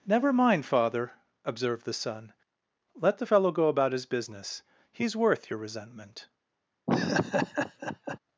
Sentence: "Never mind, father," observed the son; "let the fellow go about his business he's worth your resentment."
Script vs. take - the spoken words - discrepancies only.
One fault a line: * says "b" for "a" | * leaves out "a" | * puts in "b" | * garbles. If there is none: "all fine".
all fine